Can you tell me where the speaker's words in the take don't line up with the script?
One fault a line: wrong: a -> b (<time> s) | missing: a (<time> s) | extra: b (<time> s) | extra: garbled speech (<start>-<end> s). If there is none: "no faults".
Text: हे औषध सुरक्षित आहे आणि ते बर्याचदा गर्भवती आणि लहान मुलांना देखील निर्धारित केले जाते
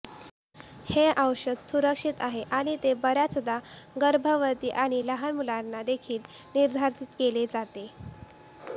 no faults